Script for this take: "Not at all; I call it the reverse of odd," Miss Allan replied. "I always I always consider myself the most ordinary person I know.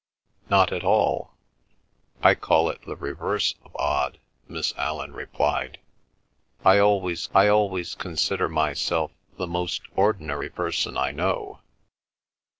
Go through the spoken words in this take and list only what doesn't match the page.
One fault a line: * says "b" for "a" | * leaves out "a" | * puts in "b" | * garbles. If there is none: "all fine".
all fine